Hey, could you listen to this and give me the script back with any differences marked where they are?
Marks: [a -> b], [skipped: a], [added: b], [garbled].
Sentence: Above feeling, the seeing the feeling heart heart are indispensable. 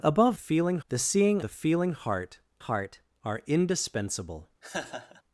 Above feeling, the seeing the feeling heart heart are indispensable.